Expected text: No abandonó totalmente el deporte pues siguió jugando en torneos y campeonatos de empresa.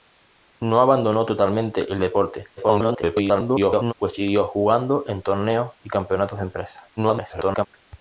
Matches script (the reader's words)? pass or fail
fail